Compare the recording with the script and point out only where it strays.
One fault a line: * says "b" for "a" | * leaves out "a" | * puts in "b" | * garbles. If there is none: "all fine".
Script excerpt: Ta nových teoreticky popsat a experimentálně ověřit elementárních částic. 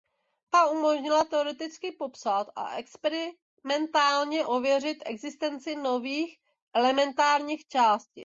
* says "umožnila" for "nových"
* puts in "existenci nových"